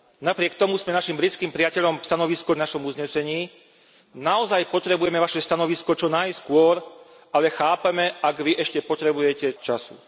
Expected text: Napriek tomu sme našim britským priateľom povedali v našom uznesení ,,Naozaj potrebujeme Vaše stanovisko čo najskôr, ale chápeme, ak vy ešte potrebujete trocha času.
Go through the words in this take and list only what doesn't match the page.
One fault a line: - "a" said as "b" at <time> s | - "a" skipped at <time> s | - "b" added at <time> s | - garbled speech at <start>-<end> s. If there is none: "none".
- "povedali" said as "stanovisko" at 2.0 s
- "trocha" skipped at 9.5 s